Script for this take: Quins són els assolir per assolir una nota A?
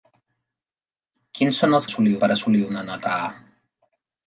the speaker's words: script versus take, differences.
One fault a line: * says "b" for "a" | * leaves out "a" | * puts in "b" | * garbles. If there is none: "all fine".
all fine